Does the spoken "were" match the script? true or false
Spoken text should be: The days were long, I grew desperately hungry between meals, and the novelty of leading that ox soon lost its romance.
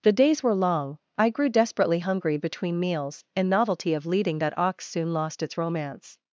true